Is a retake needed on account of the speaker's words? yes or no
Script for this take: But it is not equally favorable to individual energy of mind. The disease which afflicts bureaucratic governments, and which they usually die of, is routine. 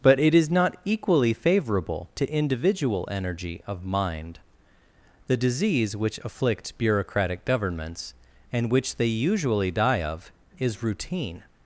no